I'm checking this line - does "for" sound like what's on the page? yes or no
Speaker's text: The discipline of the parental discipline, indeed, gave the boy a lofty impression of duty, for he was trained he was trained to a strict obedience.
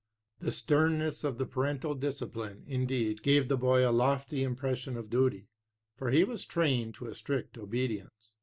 yes